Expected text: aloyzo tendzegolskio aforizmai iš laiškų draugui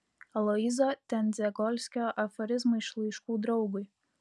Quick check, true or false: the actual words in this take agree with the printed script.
true